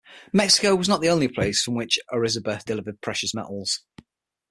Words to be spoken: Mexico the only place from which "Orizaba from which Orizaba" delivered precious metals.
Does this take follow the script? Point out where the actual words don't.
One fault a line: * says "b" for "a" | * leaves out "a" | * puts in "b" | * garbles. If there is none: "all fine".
* puts in "was not"
* leaves out "from which Orizaba"